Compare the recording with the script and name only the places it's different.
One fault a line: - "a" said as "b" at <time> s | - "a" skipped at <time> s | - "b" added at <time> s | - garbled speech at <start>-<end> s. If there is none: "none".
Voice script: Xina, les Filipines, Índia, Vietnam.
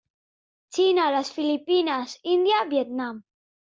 none